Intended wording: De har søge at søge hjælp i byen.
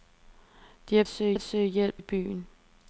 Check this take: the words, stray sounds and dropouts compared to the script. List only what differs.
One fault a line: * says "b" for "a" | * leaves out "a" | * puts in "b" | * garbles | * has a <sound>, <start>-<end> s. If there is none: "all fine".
all fine